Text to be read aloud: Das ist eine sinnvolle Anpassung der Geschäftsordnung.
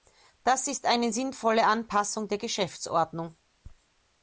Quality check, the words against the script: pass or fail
pass